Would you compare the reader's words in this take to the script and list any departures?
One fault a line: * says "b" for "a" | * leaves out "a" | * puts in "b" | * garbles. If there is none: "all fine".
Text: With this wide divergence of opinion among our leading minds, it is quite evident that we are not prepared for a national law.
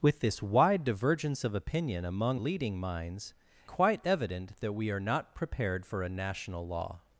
* leaves out "our"
* leaves out "it is"